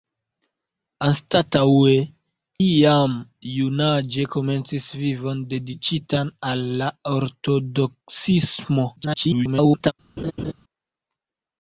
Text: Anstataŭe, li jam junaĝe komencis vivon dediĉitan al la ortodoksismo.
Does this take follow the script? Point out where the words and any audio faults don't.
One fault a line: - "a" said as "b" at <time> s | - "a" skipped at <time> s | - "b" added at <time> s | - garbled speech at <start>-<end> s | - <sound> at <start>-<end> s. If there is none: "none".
- "li" skipped at 1.9 s
- garbled speech at 9.0-9.9 s
- laugh at 10.2-10.5 s